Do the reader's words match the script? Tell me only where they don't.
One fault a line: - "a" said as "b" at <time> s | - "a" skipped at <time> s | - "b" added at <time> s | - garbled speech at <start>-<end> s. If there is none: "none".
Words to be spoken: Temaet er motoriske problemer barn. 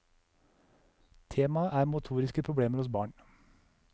- "hos" added at 2.8 s